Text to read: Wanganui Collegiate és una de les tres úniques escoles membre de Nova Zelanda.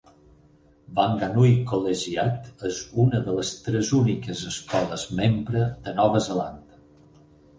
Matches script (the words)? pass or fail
pass